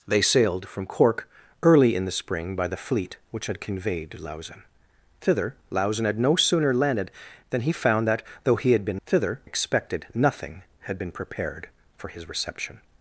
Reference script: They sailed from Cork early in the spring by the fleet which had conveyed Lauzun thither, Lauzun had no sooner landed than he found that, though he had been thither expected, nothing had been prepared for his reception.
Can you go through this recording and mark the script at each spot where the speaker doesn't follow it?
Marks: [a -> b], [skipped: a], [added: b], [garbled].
They sailed from Cork early in the spring by the fleet which had conveyed Lauzun thither, Lauzun had no sooner landed than he found that, though he had been thither expected, nothing had been prepared for his reception.